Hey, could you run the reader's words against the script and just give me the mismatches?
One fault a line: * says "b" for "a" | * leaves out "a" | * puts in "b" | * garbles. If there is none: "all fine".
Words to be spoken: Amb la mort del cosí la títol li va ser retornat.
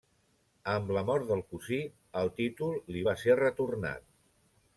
* says "el" for "la"